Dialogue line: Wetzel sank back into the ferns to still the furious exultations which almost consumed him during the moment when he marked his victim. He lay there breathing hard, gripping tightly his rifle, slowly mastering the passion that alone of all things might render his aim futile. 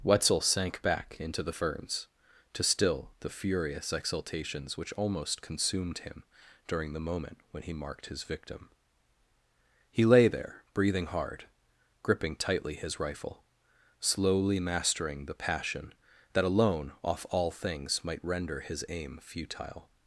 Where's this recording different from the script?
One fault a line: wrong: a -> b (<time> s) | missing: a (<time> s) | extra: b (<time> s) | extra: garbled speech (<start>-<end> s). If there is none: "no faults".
wrong: of -> off (17.0 s)